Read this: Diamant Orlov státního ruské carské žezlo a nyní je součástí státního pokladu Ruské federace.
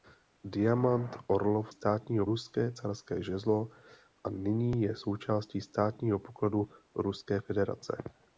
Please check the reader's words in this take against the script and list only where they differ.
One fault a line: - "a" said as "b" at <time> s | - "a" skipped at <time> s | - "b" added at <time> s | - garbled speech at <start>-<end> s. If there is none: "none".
none